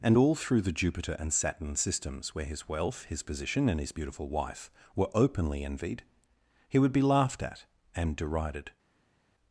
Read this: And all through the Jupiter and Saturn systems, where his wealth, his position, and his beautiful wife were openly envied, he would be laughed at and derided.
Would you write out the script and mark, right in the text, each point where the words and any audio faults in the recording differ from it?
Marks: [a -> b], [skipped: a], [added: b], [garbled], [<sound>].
And all through the Jupiter and Saturn systems, where his wealth, his position, and his beautiful wife were openly envied, he would be laughed at and derided.